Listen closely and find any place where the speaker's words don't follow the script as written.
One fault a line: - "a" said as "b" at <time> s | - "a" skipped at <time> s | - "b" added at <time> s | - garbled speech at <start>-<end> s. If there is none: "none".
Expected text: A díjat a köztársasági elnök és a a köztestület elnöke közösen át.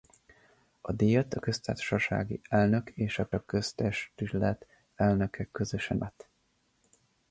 none